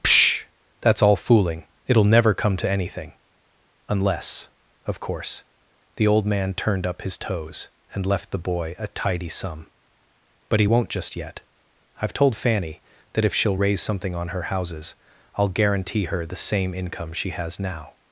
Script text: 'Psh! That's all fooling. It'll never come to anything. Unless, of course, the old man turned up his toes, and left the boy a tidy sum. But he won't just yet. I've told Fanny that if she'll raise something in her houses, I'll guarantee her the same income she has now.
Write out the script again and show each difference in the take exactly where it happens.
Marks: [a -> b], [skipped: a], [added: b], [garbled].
'Psh! That's all fooling. It'll never come to anything. Unless, of course, the old man turned up his toes, and left the boy a tidy sum. But he won't just yet. I've told Fanny that if she'll raise something [in -> on] her houses, I'll guarantee her the same income she has now.